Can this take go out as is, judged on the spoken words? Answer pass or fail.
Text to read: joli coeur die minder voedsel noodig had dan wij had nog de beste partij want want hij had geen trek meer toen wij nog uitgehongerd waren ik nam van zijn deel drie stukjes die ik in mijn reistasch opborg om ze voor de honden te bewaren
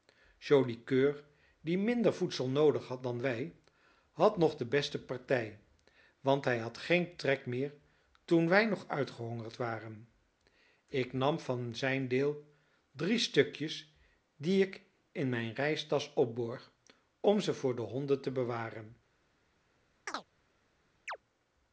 fail